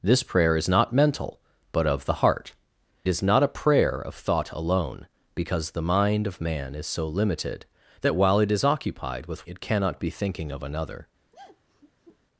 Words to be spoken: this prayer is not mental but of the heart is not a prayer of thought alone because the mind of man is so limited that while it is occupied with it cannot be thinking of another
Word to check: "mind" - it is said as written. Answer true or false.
true